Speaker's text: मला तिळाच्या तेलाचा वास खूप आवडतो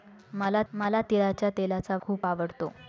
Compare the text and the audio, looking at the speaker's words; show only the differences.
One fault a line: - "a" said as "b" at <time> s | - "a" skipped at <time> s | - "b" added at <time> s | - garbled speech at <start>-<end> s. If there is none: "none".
- "मला" added at 0.7 s
- "वास" skipped at 2.0 s